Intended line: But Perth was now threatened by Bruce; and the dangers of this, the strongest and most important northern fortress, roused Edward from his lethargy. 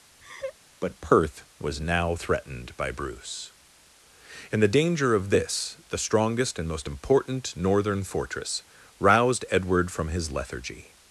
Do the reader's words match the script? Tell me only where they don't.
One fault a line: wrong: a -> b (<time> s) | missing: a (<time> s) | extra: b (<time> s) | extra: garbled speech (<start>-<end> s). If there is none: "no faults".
wrong: dangers -> danger (4.7 s)